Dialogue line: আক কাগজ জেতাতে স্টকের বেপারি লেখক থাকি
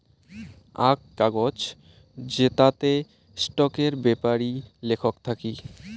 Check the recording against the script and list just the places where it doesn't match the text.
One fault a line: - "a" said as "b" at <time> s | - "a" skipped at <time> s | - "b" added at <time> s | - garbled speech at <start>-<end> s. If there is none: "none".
none